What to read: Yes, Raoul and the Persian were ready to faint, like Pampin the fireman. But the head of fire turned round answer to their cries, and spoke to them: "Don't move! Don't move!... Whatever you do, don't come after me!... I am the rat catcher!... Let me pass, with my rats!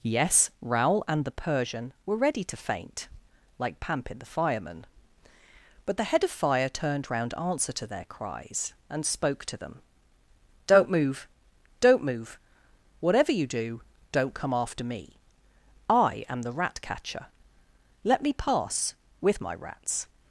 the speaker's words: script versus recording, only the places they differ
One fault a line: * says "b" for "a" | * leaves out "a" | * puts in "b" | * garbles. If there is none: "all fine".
all fine